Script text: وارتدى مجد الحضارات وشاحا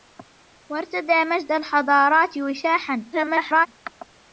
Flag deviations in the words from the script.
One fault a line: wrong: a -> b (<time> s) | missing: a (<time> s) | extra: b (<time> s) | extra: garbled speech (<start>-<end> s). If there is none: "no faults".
extra: garbled speech (3.1-3.7 s)